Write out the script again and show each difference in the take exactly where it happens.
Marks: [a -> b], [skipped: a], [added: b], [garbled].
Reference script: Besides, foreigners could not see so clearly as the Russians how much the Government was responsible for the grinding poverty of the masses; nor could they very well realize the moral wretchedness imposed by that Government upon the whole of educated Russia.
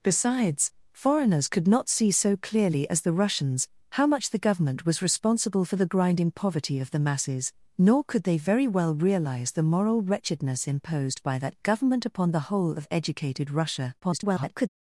Besides, foreigners could not see so clearly as the Russians how much the Government was responsible for the grinding poverty of the masses; nor could they very well realize the moral wretchedness imposed by that Government upon the whole of educated Russia. [garbled]